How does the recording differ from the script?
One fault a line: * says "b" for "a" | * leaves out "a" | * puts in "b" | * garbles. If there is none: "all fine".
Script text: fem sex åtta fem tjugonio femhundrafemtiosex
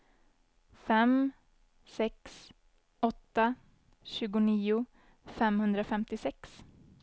* leaves out "fem"